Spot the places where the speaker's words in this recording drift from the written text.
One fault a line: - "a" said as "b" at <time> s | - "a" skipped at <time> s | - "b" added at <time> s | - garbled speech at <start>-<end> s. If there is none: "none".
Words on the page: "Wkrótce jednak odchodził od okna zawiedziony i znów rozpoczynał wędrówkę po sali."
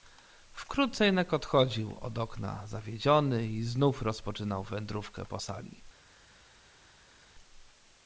none